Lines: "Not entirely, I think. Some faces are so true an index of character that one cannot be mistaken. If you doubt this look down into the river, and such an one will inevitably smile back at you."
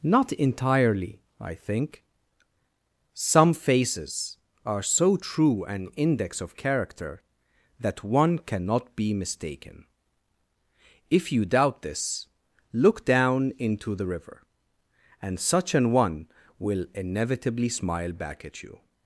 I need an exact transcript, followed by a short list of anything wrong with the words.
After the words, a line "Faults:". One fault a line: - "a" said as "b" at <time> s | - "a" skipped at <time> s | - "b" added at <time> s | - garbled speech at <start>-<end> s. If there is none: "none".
"Not entirely, I think. Some faces are so true an index of character that one cannot be mistaken. If you doubt this look down into the river, and such an one will inevitably smile back at you."
Faults:
none